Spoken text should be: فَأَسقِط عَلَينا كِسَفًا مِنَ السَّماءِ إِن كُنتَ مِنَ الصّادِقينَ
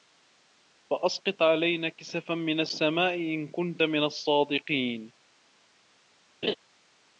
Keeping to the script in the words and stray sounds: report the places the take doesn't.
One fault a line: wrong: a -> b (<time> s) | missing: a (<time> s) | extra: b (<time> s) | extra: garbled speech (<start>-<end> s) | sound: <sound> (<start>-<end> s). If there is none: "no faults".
sound: laugh (6.4-6.5 s)